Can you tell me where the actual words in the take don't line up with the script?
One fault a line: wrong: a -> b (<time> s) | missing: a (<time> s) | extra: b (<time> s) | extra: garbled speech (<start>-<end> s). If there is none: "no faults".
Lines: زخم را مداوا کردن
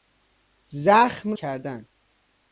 missing: را مداوا (1.3 s)